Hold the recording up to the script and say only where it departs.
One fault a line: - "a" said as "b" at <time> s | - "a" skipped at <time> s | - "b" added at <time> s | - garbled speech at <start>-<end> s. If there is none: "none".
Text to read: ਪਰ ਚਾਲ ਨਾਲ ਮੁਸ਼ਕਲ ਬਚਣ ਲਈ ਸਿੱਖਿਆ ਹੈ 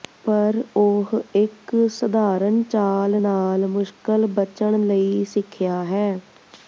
- "ਉਹ ਇੱਕ ਸਧਾਰਨ" added at 0.8 s